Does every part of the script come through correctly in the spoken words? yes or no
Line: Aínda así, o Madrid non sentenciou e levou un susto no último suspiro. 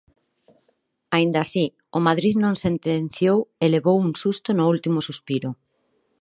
yes